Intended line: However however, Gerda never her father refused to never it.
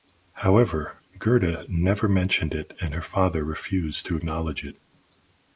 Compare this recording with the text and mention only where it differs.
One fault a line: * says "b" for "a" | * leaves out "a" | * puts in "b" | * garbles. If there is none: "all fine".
* leaves out "however"
* puts in "mentioned it and"
* says "acknowledge" for "never"